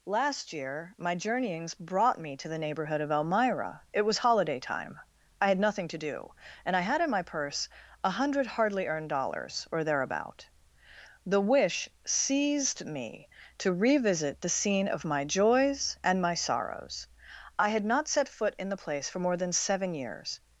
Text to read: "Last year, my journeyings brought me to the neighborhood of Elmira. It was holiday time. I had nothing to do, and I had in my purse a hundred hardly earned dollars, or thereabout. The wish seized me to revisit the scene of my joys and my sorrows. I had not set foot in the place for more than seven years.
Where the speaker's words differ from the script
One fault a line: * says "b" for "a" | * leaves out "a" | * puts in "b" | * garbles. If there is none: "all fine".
all fine